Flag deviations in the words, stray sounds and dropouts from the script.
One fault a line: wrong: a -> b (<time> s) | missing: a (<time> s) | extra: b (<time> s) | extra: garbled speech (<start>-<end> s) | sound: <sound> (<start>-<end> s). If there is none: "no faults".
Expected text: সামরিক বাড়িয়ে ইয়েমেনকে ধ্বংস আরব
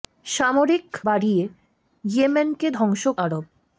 no faults